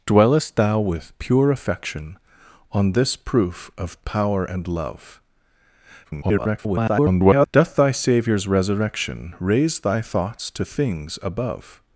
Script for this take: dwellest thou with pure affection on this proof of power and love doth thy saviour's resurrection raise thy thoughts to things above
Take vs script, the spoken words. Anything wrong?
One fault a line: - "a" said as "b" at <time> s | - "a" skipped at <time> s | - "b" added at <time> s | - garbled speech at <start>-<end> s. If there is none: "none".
- garbled speech at 6.0-7.5 s